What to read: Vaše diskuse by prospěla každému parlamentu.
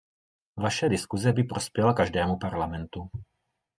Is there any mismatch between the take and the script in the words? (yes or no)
no